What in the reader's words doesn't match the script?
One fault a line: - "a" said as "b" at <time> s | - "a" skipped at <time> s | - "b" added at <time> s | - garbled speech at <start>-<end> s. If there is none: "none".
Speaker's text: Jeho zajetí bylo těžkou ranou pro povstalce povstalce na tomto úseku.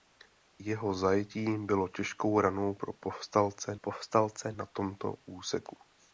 none